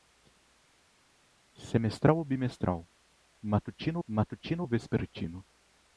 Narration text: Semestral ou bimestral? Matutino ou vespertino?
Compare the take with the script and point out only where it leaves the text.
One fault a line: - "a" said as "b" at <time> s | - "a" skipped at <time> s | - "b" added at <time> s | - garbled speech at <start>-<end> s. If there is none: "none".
- "matutino" added at 4.1 s